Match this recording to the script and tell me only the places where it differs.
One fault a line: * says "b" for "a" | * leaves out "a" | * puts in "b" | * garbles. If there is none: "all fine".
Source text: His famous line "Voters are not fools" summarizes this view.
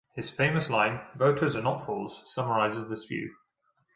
all fine